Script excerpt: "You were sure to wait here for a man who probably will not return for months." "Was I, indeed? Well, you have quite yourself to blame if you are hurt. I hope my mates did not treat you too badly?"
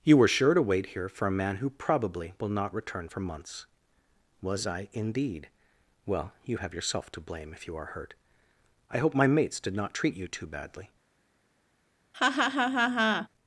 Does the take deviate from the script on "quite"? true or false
true